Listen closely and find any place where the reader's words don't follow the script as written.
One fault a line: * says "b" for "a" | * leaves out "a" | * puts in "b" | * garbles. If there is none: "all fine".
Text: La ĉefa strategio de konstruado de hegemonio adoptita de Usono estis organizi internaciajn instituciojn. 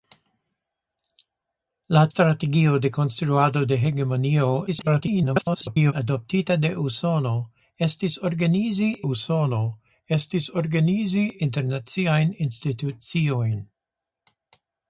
* leaves out "ĉefa"
* garbles
* puts in "Usono estis organizi"